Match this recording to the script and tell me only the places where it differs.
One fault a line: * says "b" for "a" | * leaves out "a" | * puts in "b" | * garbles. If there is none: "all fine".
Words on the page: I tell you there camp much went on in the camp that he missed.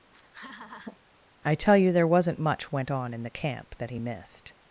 * says "wasn't" for "camp"